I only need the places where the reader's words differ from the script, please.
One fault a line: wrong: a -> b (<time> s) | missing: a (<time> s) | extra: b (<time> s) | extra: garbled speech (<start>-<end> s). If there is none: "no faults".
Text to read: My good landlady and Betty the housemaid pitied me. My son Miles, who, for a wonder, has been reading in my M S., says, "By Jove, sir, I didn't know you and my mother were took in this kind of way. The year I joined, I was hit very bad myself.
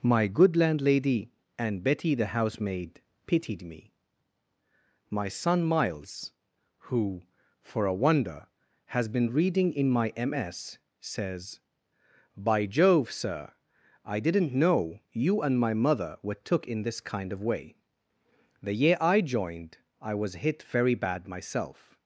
no faults